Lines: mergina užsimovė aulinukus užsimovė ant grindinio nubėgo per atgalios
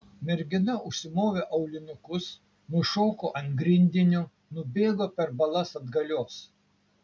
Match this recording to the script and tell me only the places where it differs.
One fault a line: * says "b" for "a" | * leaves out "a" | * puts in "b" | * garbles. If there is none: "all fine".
* says "nušoko" for "užsimovė"
* puts in "balas"